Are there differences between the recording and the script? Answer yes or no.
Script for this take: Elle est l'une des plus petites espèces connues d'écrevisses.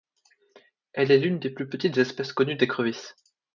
no